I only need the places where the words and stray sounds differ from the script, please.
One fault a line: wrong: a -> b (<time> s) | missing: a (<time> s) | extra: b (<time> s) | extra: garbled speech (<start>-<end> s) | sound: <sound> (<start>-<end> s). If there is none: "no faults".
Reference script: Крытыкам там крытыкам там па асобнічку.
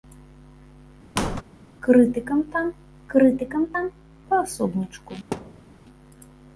sound: squeak (1.2-1.4 s)
sound: thud (5.3-5.7 s)